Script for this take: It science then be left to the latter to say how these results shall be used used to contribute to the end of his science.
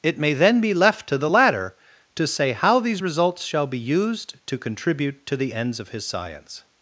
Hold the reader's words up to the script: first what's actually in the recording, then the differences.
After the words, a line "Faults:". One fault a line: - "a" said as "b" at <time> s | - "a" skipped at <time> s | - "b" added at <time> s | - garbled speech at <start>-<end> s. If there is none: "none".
It may then be left to the latter to say how these results shall be used to contribute to the ends of his science.
Faults:
- "science" said as "may" at 0.2 s
- "used" skipped at 4.4 s
- "end" said as "ends" at 5.5 s